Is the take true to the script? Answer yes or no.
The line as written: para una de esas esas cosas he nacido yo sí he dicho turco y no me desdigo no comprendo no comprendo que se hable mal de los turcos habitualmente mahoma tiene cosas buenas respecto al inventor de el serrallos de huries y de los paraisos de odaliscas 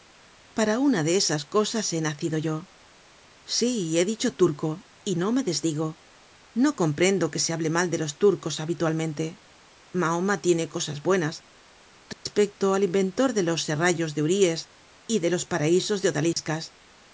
no